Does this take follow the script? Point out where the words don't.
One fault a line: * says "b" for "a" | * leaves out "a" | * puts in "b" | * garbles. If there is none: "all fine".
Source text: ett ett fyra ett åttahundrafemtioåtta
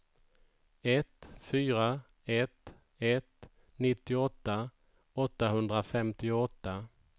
* puts in "fyra"
* says "ett nittioåtta" for "fyra ett"